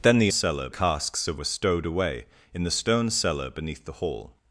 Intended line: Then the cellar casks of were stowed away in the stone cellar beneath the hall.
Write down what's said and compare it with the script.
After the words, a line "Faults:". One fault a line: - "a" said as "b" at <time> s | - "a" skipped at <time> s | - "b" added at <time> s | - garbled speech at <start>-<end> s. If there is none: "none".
Then the cellar casks of were stowed away in the stone cellar beneath the hall.
Faults:
none